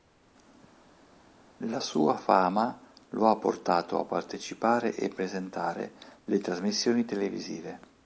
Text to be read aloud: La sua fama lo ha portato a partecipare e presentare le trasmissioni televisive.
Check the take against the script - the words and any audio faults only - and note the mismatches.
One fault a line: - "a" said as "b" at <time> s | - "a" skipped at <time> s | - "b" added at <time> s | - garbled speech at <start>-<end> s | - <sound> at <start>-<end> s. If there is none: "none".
none